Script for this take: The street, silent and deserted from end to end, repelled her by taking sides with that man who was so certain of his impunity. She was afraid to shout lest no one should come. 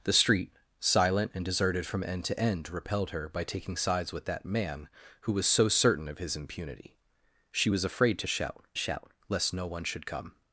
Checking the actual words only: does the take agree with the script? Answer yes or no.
no